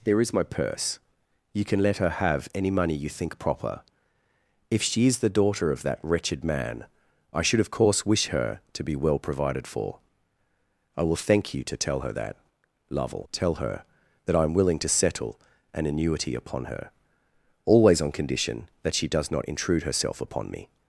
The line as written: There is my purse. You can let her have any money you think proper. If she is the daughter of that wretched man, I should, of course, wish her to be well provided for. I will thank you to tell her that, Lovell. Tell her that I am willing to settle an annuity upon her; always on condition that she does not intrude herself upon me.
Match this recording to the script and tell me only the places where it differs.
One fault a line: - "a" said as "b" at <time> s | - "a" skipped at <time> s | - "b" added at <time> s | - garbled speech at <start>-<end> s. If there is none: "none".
none